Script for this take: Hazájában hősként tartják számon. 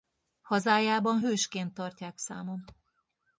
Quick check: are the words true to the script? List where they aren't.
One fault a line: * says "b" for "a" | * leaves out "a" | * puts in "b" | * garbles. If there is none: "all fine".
all fine